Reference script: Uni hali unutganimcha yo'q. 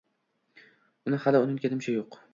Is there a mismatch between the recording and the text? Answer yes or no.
no